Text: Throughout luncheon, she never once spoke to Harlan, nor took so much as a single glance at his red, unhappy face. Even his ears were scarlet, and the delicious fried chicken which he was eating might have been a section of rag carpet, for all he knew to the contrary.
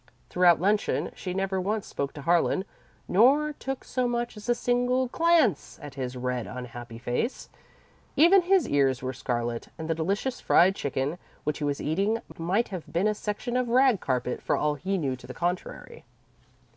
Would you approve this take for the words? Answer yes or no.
yes